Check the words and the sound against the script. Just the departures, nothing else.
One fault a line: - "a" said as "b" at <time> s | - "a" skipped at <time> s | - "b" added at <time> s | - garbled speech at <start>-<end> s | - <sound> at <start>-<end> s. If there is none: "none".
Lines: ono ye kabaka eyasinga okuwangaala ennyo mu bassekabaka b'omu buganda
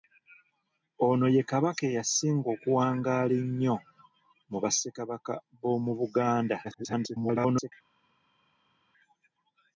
- garbled speech at 6.6-7.7 s